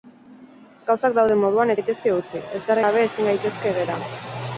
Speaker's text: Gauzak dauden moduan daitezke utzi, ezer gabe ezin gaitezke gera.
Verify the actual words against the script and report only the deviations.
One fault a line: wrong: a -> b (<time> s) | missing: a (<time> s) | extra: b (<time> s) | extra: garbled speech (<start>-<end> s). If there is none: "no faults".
no faults